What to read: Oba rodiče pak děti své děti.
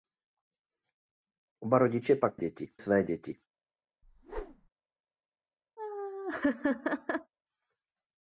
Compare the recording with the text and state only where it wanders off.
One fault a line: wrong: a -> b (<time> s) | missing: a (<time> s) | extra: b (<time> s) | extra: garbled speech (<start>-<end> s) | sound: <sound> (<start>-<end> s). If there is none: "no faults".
sound: whoosh (4.0-4.7 s)
sound: laugh (5.8-7.3 s)